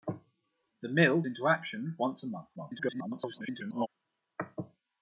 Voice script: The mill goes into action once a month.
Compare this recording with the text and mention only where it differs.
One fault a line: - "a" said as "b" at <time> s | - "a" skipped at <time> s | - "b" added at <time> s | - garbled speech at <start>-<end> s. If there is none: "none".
- "goes" skipped at 1.2 s
- garbled speech at 2.6-3.9 s